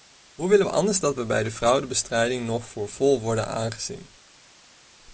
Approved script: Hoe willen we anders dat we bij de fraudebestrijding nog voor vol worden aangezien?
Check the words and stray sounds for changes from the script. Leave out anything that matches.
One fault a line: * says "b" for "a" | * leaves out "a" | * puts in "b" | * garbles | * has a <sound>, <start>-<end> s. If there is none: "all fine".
all fine